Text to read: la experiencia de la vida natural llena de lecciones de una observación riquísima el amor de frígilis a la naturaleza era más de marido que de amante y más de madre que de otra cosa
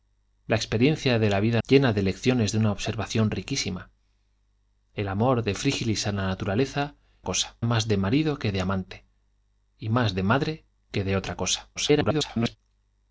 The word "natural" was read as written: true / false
false